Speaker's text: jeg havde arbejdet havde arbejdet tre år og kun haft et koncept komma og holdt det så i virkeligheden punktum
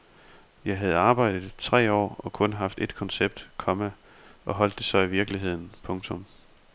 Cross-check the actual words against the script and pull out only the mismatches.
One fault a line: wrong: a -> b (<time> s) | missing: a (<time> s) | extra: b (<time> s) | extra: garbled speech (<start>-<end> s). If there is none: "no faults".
missing: havde arbejdet (1.5 s)